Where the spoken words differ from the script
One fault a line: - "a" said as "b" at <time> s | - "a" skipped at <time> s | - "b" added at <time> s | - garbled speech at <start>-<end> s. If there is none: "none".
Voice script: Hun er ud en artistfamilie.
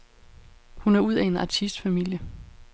- "af" added at 1.1 s